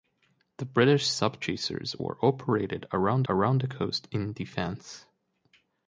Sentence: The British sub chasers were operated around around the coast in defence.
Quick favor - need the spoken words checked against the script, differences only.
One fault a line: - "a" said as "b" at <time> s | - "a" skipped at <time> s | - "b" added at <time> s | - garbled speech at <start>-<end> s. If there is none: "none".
none